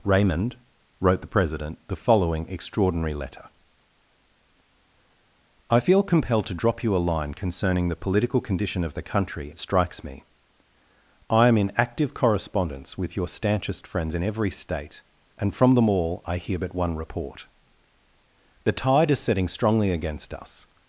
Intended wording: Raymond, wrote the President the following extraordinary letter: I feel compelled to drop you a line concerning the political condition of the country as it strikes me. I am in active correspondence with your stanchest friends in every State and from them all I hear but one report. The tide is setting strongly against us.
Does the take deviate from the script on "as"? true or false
true